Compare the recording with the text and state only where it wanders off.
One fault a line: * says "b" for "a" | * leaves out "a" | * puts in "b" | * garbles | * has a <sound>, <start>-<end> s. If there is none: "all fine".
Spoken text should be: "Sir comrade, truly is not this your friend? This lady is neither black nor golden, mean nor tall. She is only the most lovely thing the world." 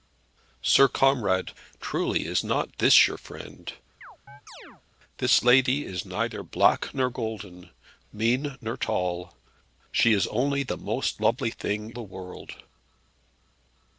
* has a chirp, 4.0-4.8 s